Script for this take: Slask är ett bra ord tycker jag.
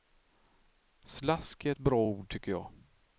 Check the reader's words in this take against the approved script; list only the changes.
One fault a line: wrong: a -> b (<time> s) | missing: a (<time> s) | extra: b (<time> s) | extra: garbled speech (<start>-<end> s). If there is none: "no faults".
no faults